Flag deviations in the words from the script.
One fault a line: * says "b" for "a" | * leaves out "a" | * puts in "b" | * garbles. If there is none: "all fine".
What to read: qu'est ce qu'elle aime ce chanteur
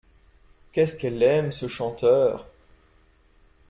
all fine